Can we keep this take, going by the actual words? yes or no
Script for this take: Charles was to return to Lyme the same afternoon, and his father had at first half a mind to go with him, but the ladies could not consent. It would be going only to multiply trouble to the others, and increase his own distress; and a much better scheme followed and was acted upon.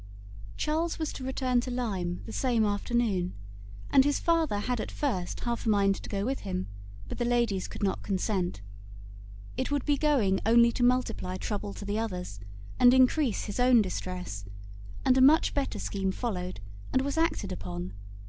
yes